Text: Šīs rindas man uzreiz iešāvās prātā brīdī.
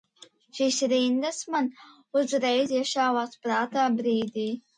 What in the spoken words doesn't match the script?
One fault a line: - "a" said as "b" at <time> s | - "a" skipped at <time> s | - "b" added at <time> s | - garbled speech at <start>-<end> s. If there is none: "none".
none